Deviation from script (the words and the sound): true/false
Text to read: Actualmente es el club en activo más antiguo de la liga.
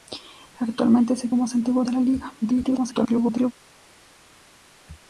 true